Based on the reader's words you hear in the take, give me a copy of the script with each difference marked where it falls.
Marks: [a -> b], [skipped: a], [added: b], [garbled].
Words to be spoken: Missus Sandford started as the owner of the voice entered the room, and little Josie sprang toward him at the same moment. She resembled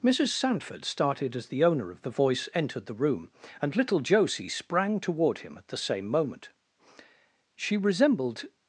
Missus Sandford started as the owner of the voice entered the room, and little Josie sprang toward him at the same moment. She resembled